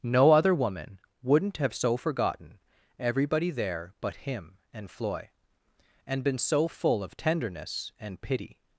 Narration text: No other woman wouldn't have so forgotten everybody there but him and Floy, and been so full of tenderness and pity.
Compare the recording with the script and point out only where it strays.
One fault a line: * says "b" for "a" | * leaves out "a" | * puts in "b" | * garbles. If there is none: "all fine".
all fine